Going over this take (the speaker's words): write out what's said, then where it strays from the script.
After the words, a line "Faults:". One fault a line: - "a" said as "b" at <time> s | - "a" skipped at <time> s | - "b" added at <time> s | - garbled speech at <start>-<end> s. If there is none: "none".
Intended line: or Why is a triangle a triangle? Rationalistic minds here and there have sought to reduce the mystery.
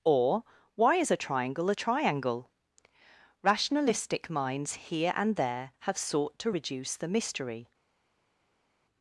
or Why is a triangle a triangle? Rationalistic minds here and there have sought to reduce the mystery.
Faults:
none